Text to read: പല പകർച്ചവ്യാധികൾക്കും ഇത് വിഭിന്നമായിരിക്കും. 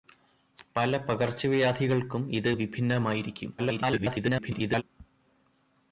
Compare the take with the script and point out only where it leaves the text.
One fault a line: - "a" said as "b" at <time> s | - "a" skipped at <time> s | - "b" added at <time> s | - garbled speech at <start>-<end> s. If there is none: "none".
- garbled speech at 3.6-4.8 s